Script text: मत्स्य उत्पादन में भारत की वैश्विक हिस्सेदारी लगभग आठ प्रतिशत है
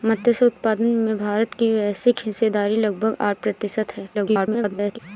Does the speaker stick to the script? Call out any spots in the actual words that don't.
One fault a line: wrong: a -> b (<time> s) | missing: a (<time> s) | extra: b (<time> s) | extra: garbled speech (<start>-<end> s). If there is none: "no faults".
extra: garbled speech (4.1-5.0 s)